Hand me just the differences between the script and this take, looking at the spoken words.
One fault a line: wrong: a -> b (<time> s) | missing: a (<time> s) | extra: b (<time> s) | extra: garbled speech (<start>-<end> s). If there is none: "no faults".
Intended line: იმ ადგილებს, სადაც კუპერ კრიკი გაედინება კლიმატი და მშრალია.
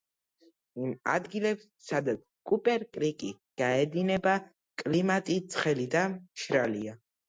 extra: ცხელი (5.5 s)